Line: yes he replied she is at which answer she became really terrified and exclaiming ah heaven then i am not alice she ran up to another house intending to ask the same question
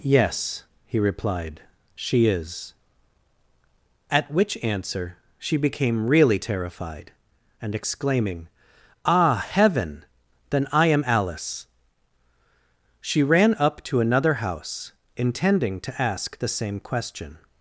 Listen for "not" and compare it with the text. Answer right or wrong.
wrong